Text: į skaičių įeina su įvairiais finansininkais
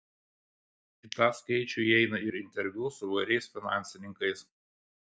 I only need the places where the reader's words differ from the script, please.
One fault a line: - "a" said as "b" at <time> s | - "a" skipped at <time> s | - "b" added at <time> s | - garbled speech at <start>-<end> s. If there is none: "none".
- "tą" added at 1.2 s
- "ir interviu" added at 2.3 s